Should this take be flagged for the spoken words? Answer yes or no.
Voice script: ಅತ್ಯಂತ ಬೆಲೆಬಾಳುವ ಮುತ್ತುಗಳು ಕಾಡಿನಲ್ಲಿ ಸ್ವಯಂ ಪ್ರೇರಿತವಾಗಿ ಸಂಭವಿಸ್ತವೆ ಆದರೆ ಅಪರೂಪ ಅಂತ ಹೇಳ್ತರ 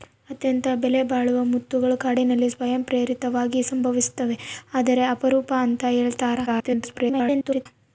yes